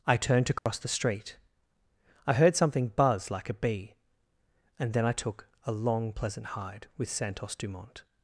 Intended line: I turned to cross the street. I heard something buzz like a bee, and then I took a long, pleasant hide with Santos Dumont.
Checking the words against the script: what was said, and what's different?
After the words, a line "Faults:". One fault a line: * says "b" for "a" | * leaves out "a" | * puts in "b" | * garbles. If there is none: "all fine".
I turned to cross the street. I heard something buzz like a bee, and then I took a long, pleasant hide with Santos Dumont.
Faults:
all fine